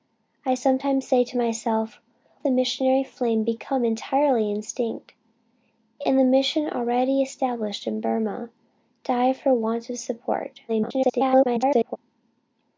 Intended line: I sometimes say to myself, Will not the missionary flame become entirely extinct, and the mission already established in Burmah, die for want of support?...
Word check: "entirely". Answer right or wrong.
right